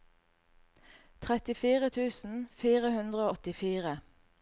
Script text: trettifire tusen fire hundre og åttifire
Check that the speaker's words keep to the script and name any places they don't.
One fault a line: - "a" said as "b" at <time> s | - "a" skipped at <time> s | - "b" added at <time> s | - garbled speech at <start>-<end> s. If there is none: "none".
none